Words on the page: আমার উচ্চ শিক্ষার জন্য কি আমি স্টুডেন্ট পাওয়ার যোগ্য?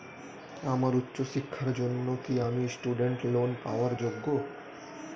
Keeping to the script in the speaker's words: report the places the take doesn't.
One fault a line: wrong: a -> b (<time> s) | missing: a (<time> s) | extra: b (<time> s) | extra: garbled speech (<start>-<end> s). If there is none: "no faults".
extra: লোন (3.3 s)